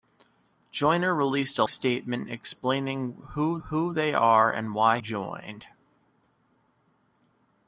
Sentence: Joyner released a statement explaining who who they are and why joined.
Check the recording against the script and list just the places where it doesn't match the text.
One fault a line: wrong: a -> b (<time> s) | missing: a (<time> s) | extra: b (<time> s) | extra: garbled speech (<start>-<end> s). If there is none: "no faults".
no faults